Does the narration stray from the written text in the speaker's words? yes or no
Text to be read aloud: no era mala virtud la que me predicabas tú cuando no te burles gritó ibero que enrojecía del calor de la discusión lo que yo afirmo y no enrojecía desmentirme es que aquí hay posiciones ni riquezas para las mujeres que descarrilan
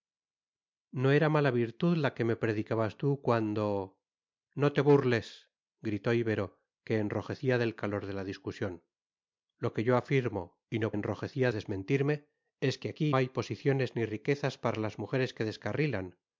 no